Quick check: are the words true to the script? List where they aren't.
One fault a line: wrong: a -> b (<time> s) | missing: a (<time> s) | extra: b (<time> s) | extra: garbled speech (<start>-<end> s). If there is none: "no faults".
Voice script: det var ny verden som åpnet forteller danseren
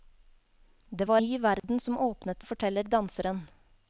no faults